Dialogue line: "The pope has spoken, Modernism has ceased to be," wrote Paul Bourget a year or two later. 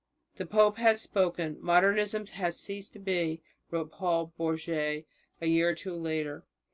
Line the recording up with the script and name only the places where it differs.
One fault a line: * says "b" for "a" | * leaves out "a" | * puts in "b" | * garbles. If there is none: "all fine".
all fine